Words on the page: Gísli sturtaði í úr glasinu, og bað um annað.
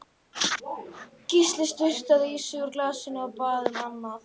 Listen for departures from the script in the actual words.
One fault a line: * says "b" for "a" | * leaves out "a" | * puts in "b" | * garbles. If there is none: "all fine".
* puts in "sig"